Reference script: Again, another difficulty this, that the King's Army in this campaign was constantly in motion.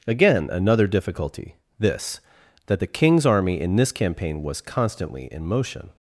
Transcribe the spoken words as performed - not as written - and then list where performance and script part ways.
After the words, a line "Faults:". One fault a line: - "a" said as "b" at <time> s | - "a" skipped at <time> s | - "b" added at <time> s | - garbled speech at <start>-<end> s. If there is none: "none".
Again, another difficulty this, that the King's Army in this campaign was constantly in motion.
Faults:
none